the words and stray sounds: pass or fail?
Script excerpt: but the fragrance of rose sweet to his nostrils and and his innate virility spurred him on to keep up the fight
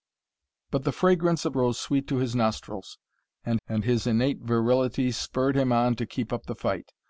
pass